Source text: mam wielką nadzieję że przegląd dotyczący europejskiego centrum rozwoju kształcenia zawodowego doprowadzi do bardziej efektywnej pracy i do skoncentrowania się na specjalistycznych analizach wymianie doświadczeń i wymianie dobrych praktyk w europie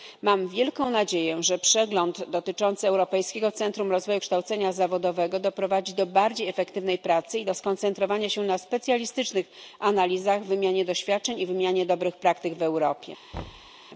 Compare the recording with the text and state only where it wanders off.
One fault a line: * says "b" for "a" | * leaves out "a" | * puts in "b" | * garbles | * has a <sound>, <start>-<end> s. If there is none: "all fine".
* has a thud, 13.3-13.7 s